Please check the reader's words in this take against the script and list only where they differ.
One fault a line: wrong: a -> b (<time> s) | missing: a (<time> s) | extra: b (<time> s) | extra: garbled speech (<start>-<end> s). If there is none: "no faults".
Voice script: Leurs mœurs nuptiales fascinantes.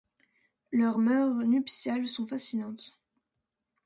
extra: sont (2.1 s)